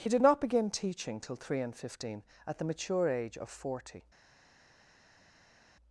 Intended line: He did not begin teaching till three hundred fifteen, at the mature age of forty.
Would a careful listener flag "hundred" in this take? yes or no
yes